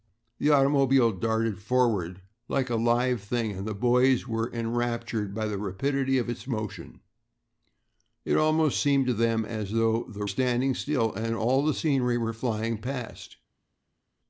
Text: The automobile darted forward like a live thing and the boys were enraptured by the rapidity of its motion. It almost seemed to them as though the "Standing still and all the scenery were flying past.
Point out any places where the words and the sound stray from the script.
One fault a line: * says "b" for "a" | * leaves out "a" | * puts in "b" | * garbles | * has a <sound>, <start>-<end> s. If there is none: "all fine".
all fine